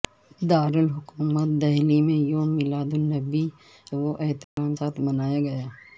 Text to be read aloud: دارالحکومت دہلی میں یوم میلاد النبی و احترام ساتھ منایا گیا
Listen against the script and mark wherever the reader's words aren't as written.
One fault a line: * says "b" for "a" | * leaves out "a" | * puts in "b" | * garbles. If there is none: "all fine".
all fine